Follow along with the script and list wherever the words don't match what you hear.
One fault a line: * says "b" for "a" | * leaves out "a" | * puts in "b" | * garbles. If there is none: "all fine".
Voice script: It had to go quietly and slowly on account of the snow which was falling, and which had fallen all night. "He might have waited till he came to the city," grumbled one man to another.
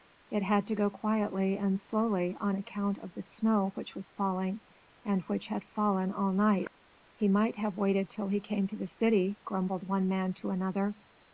all fine